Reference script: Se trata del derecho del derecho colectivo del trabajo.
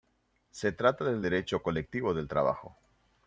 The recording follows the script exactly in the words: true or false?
false